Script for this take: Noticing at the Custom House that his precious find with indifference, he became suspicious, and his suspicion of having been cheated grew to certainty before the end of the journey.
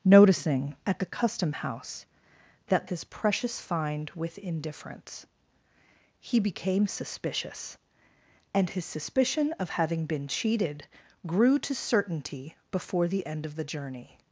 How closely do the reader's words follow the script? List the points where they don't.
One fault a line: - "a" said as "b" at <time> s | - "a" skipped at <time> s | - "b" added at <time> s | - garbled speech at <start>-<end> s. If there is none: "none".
none